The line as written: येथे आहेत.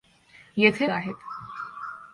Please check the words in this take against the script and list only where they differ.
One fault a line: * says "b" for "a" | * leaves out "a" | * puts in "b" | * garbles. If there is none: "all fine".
all fine